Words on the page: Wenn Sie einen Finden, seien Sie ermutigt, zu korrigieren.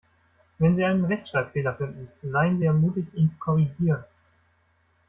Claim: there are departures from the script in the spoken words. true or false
true